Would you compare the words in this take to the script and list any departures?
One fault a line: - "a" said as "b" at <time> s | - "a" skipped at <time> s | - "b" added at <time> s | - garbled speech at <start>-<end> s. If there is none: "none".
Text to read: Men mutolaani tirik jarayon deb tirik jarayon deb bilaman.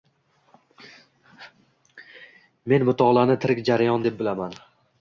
- "tirik jarayon deb" skipped at 4.2 s